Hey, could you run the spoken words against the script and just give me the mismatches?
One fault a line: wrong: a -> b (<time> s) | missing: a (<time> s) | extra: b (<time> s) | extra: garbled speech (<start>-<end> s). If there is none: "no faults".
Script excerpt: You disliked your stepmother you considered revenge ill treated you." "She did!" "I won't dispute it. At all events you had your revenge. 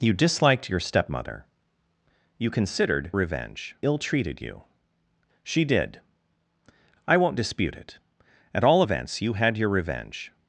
no faults